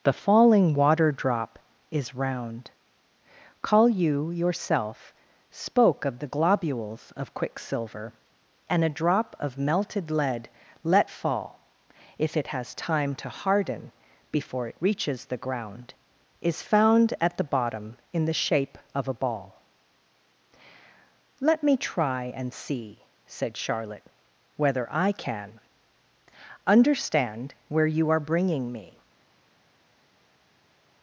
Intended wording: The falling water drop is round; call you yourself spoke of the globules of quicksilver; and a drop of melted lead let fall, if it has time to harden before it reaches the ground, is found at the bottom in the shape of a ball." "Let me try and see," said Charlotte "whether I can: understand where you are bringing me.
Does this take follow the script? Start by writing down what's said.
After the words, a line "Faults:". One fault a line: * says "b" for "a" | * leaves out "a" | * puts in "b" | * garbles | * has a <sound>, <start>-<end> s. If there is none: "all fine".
The falling water drop is round; call you yourself spoke of the globules of quicksilver; and a drop of melted lead let fall, if it has time to harden before it reaches the ground, is found at the bottom in the shape of a ball." "Let me try and see," said Charlotte "whether I can: understand where you are bringing me.
Faults:
all fine